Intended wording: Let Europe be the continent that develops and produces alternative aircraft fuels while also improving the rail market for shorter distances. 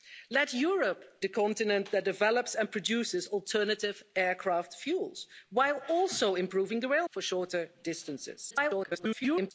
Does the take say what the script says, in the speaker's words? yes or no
no